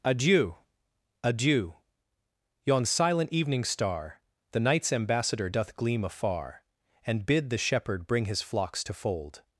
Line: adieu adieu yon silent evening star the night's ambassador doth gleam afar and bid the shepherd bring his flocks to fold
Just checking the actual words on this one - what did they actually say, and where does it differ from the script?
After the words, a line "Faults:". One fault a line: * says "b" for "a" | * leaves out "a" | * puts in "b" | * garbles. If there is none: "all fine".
adieu adieu yon silent evening star the night's ambassador doth gleam afar and bid the shepherd bring his flocks to fold
Faults:
all fine